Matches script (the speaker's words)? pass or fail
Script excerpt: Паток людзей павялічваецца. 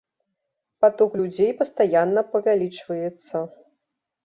fail